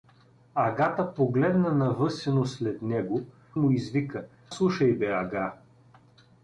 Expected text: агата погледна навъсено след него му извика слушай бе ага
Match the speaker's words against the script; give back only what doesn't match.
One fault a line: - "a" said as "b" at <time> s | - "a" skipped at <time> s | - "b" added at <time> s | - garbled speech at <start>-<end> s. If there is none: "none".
none